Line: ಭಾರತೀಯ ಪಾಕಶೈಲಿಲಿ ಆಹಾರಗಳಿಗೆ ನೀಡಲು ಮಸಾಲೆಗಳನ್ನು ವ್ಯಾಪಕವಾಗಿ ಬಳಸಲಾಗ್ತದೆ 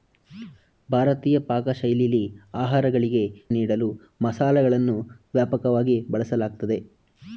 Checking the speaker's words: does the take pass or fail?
pass